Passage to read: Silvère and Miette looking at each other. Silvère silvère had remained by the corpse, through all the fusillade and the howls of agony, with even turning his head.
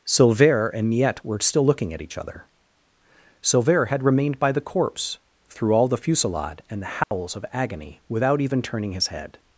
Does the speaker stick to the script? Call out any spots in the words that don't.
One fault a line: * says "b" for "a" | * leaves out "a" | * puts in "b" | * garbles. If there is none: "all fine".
* puts in "were still"
* leaves out "silvère"
* says "without" for "with"